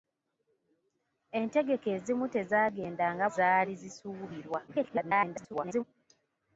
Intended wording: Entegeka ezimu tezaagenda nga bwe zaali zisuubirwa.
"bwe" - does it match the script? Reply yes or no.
no